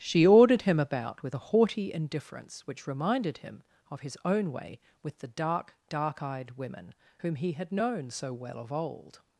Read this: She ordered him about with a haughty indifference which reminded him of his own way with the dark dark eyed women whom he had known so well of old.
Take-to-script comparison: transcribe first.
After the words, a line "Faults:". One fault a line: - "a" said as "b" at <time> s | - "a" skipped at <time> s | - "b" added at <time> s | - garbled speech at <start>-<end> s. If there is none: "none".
She ordered him about with a haughty indifference which reminded him of his own way with the dark dark eyed women whom he had known so well of old.
Faults:
none